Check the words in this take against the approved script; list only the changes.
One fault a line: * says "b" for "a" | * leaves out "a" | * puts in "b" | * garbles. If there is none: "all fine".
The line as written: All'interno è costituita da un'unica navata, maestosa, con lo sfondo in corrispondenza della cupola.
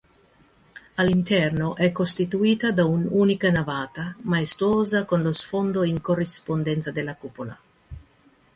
all fine